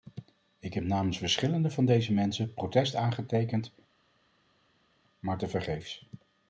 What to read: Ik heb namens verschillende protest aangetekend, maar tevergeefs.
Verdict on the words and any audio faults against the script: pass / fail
fail